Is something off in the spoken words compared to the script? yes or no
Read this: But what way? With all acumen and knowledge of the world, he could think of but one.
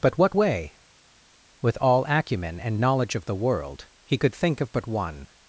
no